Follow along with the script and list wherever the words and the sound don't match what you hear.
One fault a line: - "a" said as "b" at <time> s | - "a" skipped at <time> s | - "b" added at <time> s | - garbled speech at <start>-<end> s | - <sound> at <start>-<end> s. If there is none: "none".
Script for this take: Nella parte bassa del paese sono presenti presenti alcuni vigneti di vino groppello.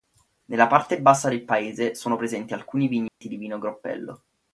- "presenti" skipped at 2.5 s
- dropout at 3.1-3.2 s